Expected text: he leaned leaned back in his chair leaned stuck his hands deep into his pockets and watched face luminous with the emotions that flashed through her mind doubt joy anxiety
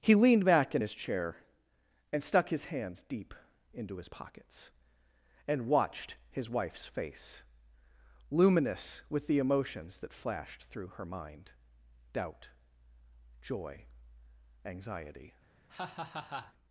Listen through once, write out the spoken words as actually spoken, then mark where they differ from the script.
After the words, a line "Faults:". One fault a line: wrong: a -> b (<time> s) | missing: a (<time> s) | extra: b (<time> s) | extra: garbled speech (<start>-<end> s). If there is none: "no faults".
he leaned back in his chair and stuck his hands deep into his pockets and watched his wife's face luminous with the emotions that flashed through her mind doubt joy anxiety
Faults:
missing: leaned (0.4 s)
wrong: leaned -> and (2.1 s)
extra: his wife's (6.3 s)